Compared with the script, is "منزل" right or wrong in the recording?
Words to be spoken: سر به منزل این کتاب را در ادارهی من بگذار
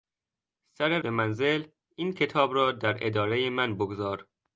right